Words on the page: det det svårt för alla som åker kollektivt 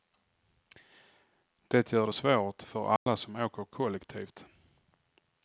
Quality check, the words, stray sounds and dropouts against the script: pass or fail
fail